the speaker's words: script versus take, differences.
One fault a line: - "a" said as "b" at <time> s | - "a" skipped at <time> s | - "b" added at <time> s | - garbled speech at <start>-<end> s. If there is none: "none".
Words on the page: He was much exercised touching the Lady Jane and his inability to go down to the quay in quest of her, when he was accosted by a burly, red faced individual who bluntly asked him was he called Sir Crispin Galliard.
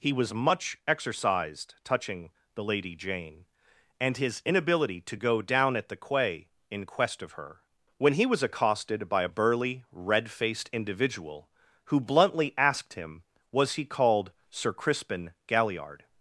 - "to" said as "at" at 5.8 s